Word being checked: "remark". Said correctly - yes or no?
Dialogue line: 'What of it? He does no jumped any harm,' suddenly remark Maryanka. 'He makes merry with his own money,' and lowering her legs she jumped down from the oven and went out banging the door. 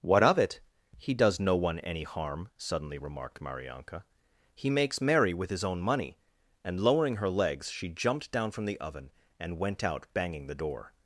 no